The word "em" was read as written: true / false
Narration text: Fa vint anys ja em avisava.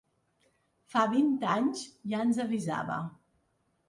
false